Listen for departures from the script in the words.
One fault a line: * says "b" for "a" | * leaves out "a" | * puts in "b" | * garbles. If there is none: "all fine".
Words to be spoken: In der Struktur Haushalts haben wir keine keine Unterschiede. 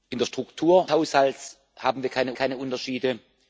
all fine